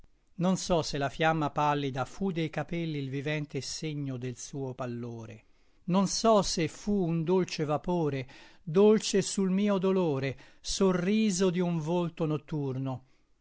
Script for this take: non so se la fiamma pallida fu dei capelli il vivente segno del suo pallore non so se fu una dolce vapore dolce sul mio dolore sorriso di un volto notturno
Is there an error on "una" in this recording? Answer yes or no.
yes